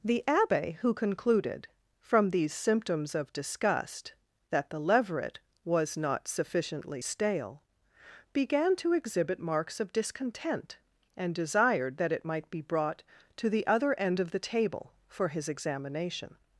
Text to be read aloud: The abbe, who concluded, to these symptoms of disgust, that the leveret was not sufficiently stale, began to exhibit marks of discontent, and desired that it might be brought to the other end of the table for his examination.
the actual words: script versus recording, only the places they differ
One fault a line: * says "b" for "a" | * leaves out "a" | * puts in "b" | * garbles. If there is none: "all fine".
* says "from" for "to"